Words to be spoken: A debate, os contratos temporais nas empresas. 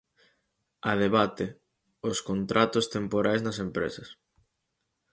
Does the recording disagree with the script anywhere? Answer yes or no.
no